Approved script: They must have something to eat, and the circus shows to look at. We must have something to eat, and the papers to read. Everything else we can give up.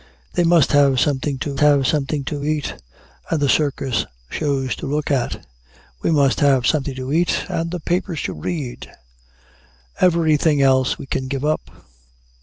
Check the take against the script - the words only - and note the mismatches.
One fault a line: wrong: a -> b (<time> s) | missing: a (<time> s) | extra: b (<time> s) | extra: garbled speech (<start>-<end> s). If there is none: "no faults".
extra: have something to (1.6 s)